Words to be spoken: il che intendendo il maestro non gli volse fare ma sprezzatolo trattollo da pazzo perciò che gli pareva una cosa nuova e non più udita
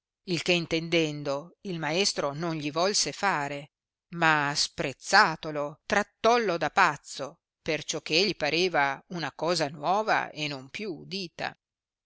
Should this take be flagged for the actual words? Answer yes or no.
no